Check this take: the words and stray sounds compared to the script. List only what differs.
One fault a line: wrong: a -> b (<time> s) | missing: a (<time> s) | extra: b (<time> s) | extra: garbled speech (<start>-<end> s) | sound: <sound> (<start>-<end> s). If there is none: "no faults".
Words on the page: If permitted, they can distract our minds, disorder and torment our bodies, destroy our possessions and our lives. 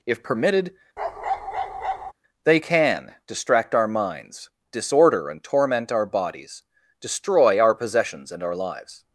sound: bark (1.0-2.1 s)